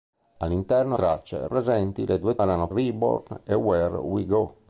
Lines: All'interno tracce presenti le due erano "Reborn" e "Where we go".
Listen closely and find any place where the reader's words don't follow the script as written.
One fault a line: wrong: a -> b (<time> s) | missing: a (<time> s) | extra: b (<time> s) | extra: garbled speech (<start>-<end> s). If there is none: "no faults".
no faults